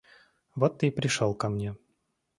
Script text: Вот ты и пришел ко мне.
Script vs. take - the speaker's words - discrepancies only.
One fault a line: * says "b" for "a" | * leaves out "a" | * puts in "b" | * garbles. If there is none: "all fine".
all fine